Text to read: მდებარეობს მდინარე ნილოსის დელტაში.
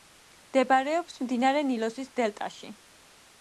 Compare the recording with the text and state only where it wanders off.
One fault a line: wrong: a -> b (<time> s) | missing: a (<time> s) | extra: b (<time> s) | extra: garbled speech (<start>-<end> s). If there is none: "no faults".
no faults